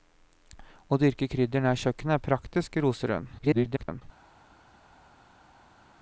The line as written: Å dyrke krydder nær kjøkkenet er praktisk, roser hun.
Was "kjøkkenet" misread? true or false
false